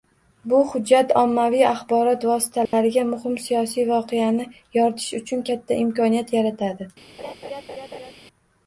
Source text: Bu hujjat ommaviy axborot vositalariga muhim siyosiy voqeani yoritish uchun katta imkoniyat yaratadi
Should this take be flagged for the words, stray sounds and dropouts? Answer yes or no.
yes